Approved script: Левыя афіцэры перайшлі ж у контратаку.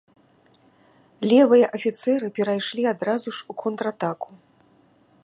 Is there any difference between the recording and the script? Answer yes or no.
yes